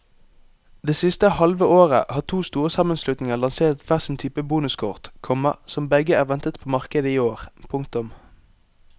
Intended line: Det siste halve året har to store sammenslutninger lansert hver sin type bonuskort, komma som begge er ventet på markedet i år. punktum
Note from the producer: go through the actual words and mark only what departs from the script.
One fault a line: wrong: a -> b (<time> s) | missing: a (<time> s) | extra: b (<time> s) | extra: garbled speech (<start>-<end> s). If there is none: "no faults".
no faults